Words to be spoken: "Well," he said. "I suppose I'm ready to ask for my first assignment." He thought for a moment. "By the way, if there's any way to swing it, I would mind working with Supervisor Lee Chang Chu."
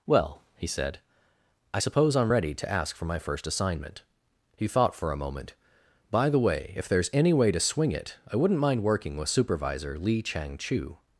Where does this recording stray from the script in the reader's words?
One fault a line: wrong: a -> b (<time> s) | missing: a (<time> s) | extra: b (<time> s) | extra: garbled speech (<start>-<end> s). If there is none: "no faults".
wrong: would -> wouldn't (8.4 s)